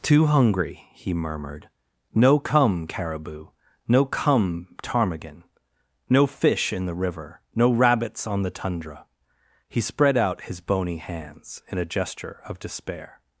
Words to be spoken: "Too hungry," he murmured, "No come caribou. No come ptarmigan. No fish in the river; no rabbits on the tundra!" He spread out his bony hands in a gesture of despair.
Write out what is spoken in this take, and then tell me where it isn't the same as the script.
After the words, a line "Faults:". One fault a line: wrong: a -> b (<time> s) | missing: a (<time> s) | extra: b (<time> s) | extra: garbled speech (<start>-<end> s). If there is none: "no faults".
"Too hungry," he murmured, "No come caribou. No come ptarmigan. No fish in the river; no rabbits on the tundra!" He spread out his bony hands in a gesture of despair.
Faults:
no faults